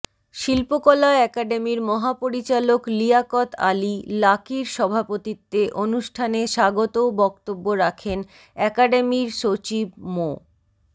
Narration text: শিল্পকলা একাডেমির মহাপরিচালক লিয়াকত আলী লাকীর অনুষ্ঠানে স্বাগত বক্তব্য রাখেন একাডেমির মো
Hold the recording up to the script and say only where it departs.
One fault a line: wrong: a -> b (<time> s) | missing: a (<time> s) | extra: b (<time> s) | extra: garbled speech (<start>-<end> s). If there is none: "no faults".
extra: সভাপতিত্বে (4.7 s)
extra: সচিব (9.4 s)